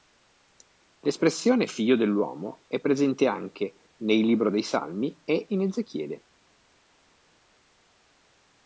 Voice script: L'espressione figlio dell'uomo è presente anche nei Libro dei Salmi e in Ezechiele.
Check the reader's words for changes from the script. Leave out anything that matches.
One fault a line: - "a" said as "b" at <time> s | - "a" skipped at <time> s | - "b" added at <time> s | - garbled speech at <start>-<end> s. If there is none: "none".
none